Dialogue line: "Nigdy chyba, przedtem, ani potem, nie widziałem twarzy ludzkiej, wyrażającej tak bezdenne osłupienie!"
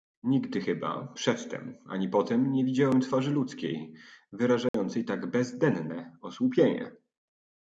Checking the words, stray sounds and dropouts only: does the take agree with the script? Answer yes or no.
no